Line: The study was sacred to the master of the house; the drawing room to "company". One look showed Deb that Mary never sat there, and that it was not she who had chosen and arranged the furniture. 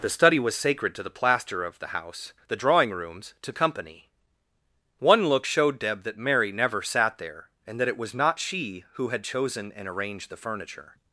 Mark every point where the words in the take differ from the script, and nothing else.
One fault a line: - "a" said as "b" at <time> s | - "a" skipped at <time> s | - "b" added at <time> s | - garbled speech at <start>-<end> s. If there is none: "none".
- "master" said as "plaster" at 1.1 s
- "room" said as "rooms" at 2.9 s